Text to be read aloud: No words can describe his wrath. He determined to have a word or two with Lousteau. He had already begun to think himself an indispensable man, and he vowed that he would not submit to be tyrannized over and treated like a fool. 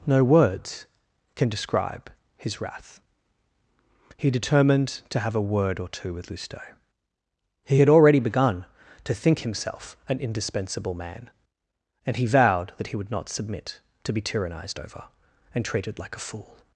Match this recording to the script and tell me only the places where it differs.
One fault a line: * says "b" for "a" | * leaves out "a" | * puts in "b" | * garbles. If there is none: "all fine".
all fine